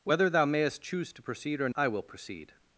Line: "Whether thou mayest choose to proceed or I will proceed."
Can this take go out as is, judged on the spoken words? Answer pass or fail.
pass